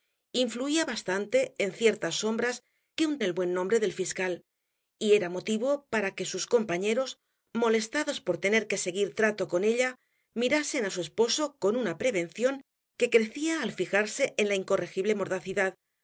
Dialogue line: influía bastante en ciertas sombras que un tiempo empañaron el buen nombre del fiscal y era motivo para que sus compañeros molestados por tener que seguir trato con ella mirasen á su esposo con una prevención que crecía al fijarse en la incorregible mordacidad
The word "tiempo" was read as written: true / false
false